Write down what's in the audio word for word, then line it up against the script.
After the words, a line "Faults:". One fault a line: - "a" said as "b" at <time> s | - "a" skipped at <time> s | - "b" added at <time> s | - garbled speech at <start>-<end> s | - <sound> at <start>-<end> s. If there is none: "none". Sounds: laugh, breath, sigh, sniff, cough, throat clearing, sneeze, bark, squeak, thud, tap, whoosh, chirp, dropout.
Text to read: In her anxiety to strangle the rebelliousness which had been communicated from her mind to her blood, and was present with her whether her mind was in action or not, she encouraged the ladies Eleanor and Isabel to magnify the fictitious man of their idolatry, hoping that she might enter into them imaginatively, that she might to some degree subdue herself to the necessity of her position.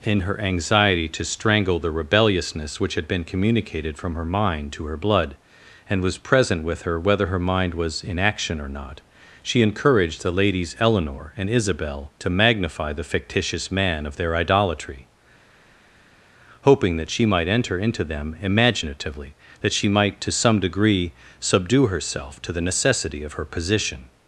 In her anxiety to strangle the rebelliousness which had been communicated from her mind to her blood, and was present with her whether her mind was in action or not, she encouraged the ladies Eleanor and Isabel to magnify the fictitious man of their idolatry, hoping that she might enter into them imaginatively, that she might to some degree subdue herself to the necessity of her position.
Faults:
none